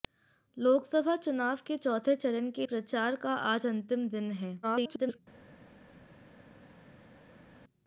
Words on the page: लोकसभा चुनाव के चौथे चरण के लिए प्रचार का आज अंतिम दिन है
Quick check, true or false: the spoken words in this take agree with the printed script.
false